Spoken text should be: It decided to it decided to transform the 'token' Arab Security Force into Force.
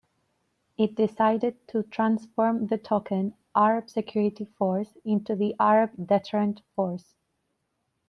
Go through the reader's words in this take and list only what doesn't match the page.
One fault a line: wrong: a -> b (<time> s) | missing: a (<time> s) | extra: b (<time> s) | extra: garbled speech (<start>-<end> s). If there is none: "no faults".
missing: it decided to (1.8 s)
extra: the Arab Deterrent (5.3 s)